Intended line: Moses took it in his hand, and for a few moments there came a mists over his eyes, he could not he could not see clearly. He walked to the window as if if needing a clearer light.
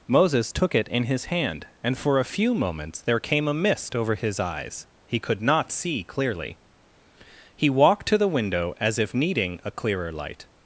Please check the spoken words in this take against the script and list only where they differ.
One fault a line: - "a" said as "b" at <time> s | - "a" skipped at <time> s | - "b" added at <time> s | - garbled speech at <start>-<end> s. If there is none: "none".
- "mists" said as "mist" at 3.5 s
- "he could not" skipped at 5.7 s
- "if" skipped at 9.1 s